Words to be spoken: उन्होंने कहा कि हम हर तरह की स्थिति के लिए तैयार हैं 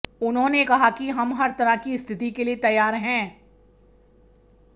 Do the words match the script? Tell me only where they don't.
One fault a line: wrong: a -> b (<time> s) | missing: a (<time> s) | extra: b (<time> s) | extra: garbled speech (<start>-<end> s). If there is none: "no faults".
no faults